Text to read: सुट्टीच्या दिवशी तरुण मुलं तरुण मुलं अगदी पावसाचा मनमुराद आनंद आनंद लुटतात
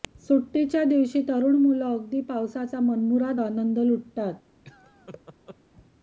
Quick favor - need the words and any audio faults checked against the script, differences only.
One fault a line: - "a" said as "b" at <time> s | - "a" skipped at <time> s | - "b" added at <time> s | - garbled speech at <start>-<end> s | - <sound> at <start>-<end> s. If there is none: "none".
- "तरुण मुलं" skipped at 1.9 s
- "आनंद" skipped at 3.8 s
- laugh at 4.6-5.6 s